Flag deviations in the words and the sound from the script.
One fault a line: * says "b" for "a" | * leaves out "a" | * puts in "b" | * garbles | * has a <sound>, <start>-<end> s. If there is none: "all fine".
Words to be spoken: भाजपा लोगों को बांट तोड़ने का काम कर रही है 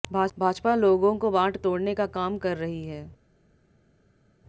all fine